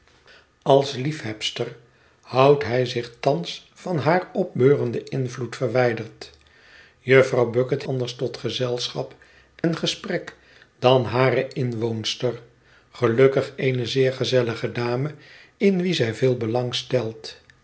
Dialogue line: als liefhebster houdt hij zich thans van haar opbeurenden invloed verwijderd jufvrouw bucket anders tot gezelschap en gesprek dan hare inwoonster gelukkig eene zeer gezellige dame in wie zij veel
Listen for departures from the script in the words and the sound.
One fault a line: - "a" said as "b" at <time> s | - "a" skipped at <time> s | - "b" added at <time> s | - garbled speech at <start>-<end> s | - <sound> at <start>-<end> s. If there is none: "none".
- dropout at 9.6-9.6 s